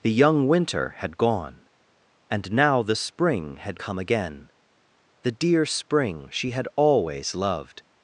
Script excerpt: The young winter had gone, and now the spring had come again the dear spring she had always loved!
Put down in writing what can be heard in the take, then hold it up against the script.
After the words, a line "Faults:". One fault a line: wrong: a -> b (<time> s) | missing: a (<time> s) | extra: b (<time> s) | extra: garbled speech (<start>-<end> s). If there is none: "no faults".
The young winter had gone, and now the spring had come again the dear spring she had always loved!
Faults:
no faults